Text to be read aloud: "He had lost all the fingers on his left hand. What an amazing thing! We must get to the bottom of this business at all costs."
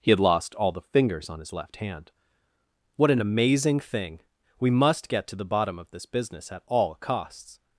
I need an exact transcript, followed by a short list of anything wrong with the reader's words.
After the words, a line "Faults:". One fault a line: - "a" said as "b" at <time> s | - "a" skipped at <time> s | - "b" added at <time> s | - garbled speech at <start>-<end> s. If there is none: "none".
"He had lost all the fingers on his left hand. What an amazing thing! We must get to the bottom of this business at all costs."
Faults:
none